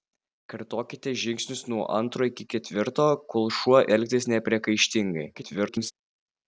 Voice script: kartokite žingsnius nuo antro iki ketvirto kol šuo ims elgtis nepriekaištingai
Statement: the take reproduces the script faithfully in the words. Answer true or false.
false